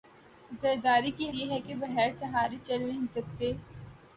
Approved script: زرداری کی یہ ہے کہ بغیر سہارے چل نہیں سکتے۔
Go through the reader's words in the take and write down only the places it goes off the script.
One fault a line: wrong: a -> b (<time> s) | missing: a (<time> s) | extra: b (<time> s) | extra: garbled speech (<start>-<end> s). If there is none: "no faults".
no faults